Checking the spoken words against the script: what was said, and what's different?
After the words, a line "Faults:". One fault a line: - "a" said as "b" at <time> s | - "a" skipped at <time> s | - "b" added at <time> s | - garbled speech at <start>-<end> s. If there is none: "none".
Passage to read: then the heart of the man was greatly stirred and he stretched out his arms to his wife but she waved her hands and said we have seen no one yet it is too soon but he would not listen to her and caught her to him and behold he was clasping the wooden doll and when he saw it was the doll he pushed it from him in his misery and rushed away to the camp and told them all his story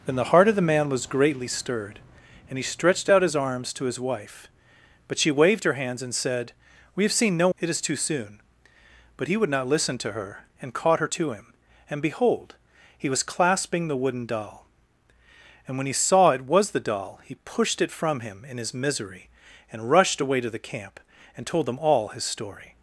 then the heart of the man was greatly stirred and he stretched out his arms to his wife but she waved her hands and said we have seen no it is too soon but he would not listen to her and caught her to him and behold he was clasping the wooden doll and when he saw it was the doll he pushed it from him in his misery and rushed away to the camp and told them all his story
Faults:
- "one yet" skipped at 7.5 s